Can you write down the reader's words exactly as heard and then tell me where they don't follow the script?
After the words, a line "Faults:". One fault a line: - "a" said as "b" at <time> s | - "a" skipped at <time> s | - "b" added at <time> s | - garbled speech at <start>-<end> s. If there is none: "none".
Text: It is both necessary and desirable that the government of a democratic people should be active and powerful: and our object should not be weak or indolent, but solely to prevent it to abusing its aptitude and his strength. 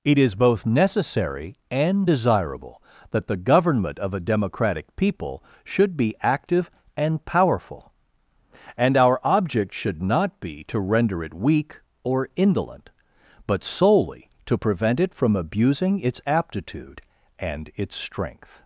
It is both necessary and desirable that the government of a democratic people should be active and powerful: and our object should not be to render it weak or indolent, but solely to prevent it from abusing its aptitude and its strength.
Faults:
- "to render it" added at 10.6 s
- "to" said as "from" at 15.1 s
- "his" said as "its" at 17.8 s